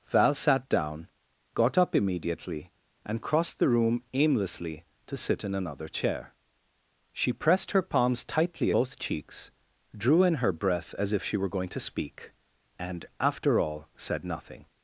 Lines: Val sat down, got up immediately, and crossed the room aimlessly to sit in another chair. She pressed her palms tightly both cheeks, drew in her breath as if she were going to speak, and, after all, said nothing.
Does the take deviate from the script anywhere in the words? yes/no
no